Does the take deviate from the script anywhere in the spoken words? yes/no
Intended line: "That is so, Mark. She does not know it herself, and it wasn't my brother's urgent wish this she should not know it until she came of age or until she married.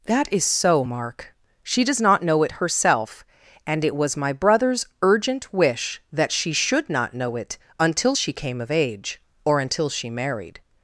yes